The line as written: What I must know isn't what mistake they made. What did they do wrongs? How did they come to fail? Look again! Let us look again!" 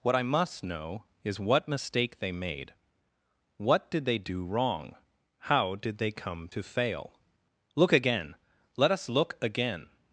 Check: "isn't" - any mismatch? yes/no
yes